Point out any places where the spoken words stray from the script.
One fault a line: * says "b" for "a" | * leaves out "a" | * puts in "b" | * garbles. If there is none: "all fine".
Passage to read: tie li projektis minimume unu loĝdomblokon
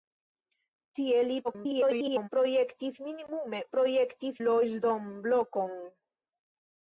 * garbles
* says "projektis" for "unu"